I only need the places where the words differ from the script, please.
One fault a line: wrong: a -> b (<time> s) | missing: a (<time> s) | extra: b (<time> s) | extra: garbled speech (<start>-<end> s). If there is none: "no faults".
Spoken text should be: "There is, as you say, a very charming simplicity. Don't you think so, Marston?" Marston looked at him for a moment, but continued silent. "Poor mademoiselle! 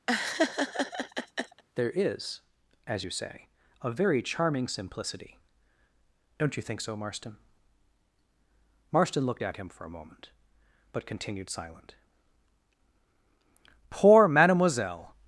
no faults